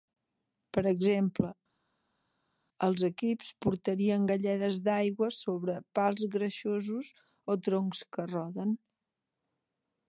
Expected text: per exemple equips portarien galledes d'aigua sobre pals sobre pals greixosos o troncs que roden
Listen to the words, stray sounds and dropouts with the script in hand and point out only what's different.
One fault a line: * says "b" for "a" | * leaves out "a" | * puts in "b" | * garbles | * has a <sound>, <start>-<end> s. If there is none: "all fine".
* puts in "els"
* leaves out "sobre pals"